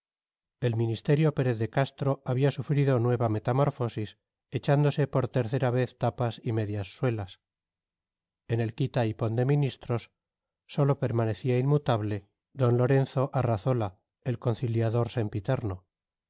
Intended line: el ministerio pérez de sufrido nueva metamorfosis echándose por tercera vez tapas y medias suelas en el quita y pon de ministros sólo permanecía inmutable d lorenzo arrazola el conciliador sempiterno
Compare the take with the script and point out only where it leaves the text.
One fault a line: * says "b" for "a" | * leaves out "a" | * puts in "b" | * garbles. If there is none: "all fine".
* puts in "castro había"